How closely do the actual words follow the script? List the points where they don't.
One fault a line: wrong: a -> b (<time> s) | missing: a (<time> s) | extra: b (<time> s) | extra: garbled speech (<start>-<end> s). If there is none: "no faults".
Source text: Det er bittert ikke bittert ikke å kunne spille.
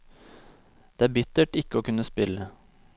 missing: bittert ikke (1.8 s)